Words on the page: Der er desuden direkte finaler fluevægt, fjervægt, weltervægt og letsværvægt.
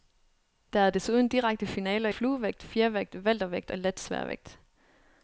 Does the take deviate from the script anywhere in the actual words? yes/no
no